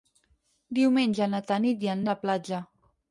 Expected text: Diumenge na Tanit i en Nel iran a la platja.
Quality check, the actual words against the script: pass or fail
fail